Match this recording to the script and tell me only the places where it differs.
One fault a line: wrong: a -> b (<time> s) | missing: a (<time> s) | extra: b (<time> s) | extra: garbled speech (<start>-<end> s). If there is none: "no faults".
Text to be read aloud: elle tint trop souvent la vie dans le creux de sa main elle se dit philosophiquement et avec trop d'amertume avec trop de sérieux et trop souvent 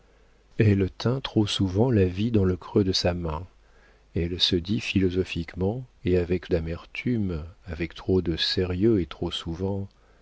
missing: trop (6.5 s)